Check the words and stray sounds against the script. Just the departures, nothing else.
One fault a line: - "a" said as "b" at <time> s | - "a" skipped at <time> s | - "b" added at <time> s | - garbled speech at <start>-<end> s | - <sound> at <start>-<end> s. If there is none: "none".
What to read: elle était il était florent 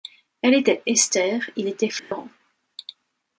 - "esther" added at 0.9 s
- dropout at 2.0-2.1 s